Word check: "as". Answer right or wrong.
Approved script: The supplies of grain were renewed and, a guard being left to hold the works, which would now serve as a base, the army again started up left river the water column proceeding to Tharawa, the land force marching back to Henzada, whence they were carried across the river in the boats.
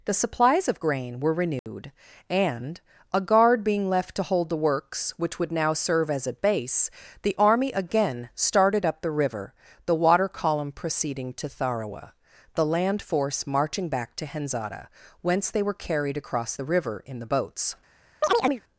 right